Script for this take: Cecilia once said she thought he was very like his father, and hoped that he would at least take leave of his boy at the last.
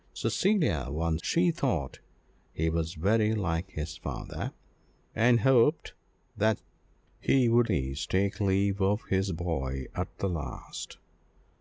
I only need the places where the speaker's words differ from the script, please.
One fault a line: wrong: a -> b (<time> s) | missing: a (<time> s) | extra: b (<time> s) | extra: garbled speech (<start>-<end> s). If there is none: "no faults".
missing: said (1.2 s)
missing: at (7.7 s)